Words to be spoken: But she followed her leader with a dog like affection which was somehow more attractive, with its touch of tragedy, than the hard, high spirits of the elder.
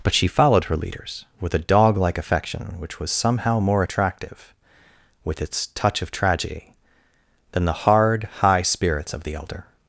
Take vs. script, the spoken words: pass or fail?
fail